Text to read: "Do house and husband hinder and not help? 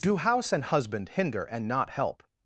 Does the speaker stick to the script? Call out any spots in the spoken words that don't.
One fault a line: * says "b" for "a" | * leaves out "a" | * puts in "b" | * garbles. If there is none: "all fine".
all fine